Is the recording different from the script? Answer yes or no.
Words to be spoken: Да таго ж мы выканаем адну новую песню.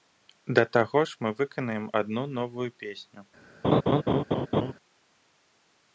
no